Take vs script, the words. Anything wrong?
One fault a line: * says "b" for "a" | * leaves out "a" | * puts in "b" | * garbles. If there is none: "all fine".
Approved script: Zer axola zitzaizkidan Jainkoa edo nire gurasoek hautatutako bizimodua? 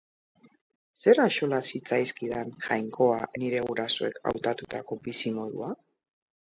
* leaves out "edo"